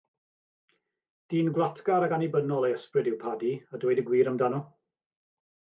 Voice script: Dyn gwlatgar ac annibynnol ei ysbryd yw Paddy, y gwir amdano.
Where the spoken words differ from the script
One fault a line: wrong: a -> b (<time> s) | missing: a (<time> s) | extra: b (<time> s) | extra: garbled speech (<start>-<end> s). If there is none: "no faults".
extra: a dweud (3.7 s)